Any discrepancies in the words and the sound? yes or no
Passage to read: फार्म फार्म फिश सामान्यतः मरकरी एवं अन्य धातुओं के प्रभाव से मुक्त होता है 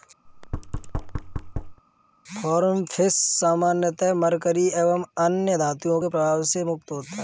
yes